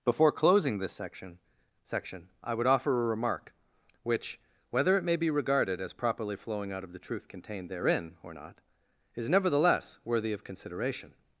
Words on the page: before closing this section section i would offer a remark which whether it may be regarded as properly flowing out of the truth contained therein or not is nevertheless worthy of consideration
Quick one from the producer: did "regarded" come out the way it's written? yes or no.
yes